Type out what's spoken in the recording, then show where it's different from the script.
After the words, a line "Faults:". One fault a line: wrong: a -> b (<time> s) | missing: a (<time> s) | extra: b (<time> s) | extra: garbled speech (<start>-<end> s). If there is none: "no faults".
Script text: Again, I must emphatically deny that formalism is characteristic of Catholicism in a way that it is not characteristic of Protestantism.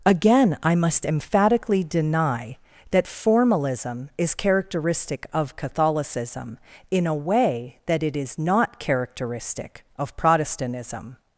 Again, I must emphatically deny that formalism is characteristic of Catholicism in a way that it is not characteristic of Protestantism.
Faults:
no faults